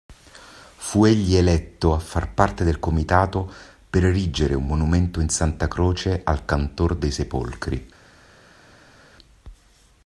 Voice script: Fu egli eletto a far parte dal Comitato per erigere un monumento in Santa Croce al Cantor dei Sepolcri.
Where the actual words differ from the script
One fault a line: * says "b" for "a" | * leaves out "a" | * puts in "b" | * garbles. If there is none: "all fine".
* says "del" for "dal"